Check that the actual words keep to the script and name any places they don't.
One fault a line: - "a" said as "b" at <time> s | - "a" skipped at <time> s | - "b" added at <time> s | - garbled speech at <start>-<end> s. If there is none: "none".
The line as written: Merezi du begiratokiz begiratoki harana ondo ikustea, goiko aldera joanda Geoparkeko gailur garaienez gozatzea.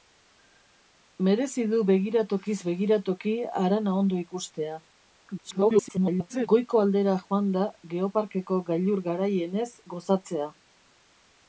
- garbled speech at 5.4-6.5 s